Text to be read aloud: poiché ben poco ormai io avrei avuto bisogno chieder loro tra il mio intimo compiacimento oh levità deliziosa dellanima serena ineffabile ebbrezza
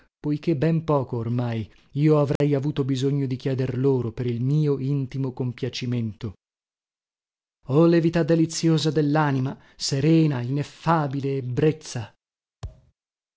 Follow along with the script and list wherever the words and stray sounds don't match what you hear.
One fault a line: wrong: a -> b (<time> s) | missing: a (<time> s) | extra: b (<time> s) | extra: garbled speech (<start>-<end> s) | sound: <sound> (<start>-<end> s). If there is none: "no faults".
sound: dropout (2.4-2.4 s)
extra: di (3.3 s)
wrong: tra -> per (4.1 s)
sound: thud (12.6-12.9 s)